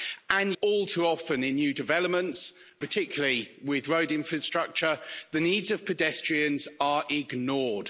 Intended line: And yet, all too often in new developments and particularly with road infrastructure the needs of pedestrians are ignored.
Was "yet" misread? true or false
true